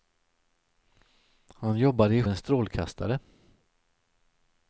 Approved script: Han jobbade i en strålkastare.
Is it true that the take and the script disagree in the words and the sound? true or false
false